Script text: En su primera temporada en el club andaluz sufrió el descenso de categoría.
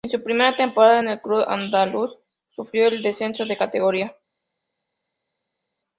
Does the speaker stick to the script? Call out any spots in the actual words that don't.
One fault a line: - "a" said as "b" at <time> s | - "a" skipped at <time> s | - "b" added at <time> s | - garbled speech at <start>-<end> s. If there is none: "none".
none